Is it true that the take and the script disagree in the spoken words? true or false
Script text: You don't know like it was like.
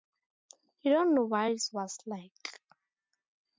true